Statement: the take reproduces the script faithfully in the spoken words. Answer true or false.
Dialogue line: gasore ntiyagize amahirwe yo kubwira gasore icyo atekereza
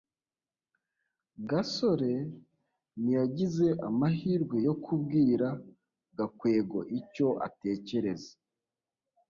false